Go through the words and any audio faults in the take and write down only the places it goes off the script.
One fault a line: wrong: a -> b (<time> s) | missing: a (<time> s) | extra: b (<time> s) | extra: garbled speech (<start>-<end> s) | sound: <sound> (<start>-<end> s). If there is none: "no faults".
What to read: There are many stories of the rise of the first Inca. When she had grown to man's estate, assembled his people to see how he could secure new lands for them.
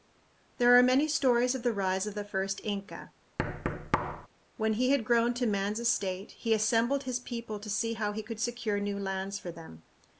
sound: thud (3.4-4.3 s)
wrong: she -> he (4.7 s)
extra: he (6.3 s)